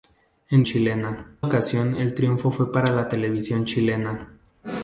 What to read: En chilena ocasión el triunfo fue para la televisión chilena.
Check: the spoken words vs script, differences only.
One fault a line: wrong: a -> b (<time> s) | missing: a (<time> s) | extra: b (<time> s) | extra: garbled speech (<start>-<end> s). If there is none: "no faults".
no faults